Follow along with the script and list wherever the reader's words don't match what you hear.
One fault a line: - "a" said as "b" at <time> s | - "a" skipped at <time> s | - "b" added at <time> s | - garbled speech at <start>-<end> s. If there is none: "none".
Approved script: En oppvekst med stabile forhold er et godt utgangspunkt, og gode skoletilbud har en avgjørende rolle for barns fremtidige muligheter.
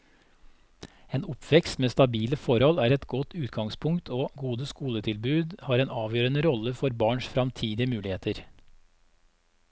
none